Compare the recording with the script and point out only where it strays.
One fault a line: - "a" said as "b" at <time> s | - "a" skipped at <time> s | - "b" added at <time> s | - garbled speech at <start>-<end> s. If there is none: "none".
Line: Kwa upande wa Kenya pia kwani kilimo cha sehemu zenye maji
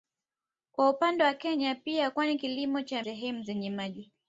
none